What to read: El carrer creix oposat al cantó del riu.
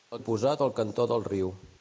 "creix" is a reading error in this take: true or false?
true